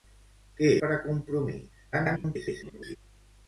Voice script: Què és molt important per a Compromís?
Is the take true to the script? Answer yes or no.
no